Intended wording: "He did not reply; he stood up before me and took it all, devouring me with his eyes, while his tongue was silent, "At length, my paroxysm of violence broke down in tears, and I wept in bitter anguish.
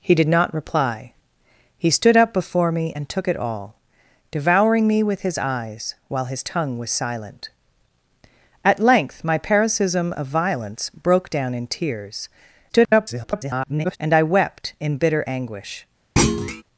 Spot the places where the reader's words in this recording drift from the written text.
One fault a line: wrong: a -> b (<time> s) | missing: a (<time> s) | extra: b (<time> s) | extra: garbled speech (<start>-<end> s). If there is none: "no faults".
extra: garbled speech (12.7-14.0 s)